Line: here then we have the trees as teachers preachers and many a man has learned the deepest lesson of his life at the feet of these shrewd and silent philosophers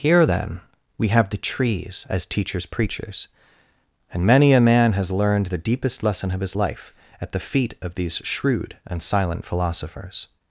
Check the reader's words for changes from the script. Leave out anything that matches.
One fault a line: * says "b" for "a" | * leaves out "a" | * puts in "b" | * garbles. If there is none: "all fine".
all fine